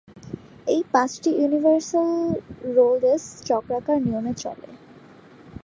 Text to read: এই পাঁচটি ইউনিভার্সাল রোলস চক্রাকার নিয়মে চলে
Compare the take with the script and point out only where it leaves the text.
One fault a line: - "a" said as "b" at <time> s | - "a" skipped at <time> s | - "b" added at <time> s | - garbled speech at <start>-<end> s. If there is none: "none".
none